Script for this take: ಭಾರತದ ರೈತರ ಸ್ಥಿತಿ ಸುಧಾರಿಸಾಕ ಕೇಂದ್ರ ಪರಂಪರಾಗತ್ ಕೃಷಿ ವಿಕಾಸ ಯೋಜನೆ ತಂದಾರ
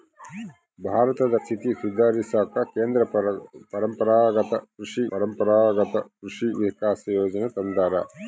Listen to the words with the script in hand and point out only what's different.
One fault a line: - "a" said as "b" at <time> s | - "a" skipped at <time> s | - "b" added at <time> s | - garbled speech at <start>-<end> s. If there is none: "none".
- "ರೈತರ" skipped at 1.4 s
- "ಪರಂಪರಾಗತ್ ಕೃಷಿ" added at 5.1 s